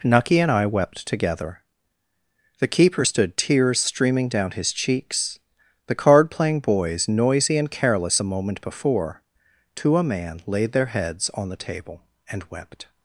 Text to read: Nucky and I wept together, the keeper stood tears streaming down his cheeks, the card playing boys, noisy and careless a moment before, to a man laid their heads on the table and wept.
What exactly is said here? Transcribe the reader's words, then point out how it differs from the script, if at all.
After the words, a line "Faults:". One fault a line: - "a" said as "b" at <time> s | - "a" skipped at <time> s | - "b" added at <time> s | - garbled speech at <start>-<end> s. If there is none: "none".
Nucky and I wept together, the keeper stood tears streaming down his cheeks, the card playing boys, noisy and careless a moment before, to a man laid their heads on the table and wept.
Faults:
none